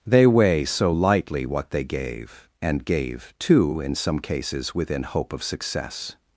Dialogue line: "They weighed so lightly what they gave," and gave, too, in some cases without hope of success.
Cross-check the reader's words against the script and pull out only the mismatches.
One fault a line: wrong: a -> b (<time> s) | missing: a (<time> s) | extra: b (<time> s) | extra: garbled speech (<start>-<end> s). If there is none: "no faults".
wrong: weighed -> weigh (0.2 s)
wrong: without -> within (4.8 s)